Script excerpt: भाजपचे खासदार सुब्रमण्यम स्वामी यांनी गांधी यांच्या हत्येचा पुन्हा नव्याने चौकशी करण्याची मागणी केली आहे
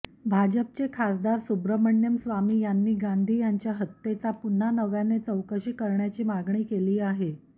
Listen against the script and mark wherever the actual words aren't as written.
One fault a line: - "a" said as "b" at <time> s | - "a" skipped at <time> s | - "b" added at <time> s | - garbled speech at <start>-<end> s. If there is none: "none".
none